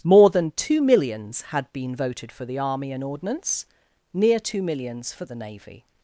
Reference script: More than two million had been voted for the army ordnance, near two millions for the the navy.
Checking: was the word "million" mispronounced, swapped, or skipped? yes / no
yes